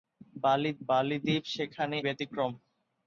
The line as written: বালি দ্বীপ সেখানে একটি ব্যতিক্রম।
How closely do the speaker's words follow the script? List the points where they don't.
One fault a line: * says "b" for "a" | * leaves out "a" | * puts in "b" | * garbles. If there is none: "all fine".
* puts in "বালি"
* leaves out "একটি"